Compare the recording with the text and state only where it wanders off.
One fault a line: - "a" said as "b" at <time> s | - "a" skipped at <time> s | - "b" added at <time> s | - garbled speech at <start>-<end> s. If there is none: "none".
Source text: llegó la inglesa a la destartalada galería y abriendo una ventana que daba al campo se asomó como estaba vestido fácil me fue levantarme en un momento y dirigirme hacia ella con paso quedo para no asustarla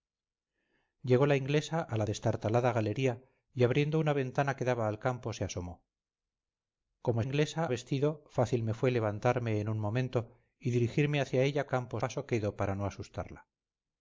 - "estaba" said as "inglesa" at 7.2 s
- "con" said as "campo" at 11.7 s